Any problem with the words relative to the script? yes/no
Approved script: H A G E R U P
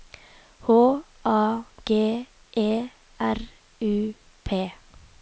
no